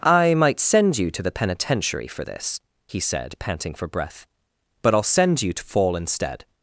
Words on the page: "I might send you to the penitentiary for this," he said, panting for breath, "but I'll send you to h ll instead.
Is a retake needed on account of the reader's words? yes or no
yes